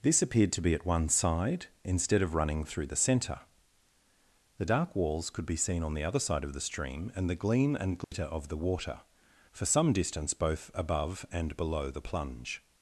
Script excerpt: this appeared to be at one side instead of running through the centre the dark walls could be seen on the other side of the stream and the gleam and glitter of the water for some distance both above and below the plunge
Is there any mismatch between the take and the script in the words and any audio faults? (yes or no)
yes